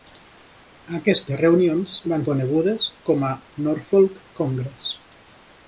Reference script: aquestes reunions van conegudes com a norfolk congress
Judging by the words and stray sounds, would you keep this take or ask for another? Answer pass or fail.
pass